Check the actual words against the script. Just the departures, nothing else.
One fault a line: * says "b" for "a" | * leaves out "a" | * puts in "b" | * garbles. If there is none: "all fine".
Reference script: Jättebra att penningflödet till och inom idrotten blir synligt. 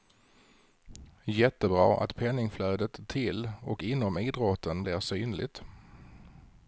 all fine